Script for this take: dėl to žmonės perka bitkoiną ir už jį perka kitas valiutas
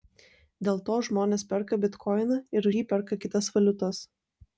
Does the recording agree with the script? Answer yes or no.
no